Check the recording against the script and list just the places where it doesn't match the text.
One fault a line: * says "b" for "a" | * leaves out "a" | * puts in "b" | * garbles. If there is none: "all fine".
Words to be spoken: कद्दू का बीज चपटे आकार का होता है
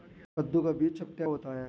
* leaves out "आकार का"